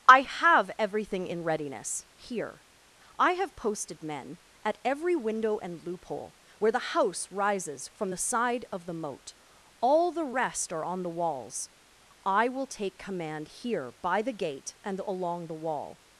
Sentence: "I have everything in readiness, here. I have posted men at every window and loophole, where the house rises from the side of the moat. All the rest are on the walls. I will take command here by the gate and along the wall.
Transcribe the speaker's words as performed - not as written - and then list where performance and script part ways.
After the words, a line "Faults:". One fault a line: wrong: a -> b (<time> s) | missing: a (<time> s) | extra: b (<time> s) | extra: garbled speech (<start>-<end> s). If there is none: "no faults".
"I have everything in readiness, here. I have posted men at every window and loophole, where the house rises from the side of the moat. All the rest are on the walls. I will take command here by the gate and along the wall.
Faults:
no faults